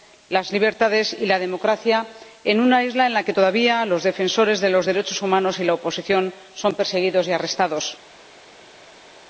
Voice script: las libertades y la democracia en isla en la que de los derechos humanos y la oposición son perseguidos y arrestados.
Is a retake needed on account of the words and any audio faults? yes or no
yes